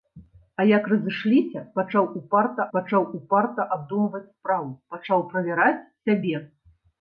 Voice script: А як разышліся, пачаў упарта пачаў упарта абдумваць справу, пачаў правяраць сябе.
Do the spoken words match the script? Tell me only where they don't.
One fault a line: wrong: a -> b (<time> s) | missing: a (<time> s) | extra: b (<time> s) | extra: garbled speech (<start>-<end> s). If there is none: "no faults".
no faults